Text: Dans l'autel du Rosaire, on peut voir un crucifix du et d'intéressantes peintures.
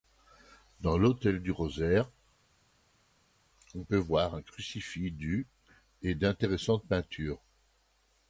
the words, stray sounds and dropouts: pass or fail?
pass